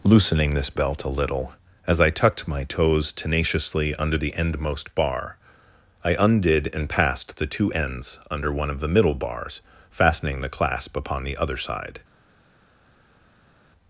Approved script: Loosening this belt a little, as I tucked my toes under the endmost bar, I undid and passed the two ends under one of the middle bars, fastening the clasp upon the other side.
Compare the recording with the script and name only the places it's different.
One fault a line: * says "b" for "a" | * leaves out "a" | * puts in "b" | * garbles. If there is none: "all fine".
* puts in "tenaciously"